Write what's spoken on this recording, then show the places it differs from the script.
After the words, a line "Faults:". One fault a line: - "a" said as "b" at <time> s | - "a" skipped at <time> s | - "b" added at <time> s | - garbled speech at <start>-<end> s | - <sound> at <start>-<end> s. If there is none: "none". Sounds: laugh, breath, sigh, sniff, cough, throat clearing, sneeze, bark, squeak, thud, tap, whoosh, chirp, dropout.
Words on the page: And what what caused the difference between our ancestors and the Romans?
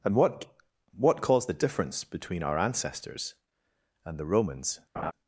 And what what caused the difference between our ancestors and the Romans?
Faults:
- laugh at 5.0-5.1 s